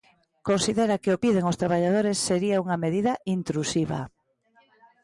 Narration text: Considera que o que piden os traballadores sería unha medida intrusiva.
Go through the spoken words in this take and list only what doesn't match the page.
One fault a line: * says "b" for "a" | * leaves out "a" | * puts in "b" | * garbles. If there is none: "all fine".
* leaves out "que"